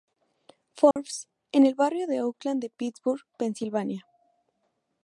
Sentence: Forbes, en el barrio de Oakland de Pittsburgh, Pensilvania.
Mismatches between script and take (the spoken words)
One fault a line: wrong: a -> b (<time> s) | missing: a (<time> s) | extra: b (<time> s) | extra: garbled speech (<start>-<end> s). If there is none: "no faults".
no faults